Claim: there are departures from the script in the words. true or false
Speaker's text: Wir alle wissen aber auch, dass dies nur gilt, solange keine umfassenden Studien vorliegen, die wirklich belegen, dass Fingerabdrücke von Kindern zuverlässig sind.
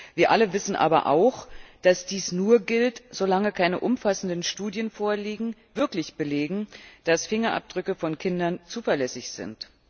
true